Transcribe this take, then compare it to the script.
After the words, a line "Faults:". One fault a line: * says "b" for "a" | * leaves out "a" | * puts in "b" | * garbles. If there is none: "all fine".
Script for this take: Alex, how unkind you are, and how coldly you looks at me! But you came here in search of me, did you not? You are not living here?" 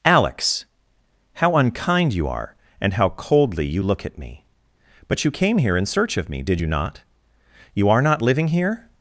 Alex, how unkind you are, and how coldly you look at me! But you came here in search of me, did you not? You are not living here?"
Faults:
* says "look" for "looks"